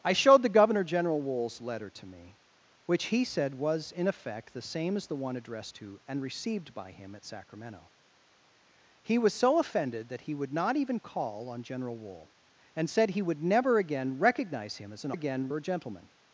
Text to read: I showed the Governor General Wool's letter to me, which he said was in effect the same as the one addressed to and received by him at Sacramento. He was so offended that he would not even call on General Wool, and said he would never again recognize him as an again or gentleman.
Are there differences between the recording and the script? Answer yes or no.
no